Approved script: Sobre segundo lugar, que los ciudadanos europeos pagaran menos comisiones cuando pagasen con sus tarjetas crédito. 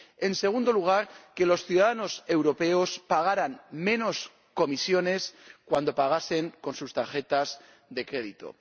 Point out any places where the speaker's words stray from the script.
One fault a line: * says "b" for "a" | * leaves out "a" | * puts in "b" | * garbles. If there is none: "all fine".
* says "En" for "Sobre"
* puts in "de"